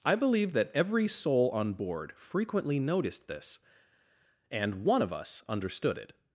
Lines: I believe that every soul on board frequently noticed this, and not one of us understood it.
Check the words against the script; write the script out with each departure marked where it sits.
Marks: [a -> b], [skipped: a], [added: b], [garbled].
I believe that every soul on board frequently noticed this, and [skipped: not] one of us understood it.